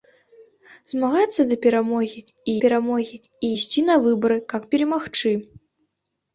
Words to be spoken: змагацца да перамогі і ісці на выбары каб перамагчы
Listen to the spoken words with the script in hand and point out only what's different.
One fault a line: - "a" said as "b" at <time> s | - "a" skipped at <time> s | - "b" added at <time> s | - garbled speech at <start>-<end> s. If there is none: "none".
- "перамогі і" added at 2.6 s